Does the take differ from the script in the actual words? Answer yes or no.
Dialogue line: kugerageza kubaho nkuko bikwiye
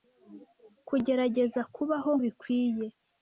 yes